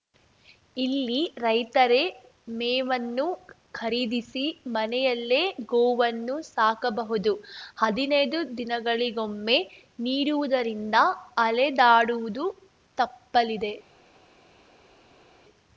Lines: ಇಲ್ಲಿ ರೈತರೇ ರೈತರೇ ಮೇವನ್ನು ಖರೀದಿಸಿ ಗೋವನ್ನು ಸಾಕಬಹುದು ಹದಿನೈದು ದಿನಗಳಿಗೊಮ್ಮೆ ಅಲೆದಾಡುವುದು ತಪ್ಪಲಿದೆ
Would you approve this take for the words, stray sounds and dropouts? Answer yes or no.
no